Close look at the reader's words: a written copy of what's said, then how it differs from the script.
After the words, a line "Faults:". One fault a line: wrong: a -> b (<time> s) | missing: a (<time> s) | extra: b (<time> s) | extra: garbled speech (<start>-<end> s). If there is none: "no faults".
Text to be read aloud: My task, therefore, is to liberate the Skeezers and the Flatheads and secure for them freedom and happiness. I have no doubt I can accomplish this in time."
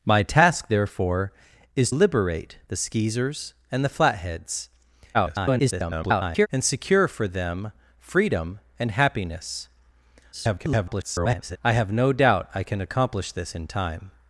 My task, therefore, is liberate the Skeezers and the Flatheads [garbled] and secure for them freedom and happiness. [garbled] I have no doubt I can accomplish this in time."
Faults:
missing: to (1.9 s)
extra: garbled speech (5.1-6.5 s)
extra: garbled speech (10.3-11.6 s)